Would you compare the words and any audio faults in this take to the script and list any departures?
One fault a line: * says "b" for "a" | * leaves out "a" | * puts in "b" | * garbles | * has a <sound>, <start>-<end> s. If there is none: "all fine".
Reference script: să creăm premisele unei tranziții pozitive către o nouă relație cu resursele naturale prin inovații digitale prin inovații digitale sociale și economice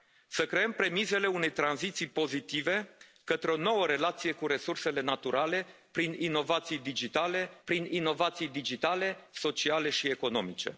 all fine